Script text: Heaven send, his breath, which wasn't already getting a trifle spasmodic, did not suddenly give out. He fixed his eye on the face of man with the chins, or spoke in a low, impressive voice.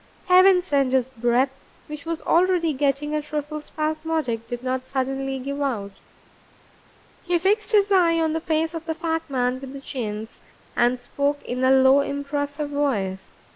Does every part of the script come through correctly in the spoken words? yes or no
no